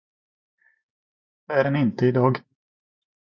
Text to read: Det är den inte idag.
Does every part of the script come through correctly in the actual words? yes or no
yes